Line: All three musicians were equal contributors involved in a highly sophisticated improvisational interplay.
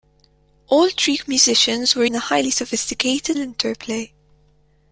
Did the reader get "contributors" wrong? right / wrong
wrong